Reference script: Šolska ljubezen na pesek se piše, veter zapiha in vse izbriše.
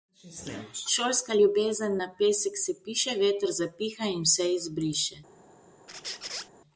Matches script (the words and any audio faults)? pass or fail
fail